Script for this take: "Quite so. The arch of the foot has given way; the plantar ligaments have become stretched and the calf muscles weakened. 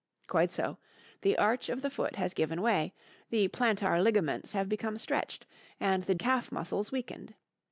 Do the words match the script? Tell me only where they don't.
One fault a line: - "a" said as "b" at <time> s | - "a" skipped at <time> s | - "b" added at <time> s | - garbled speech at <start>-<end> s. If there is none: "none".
none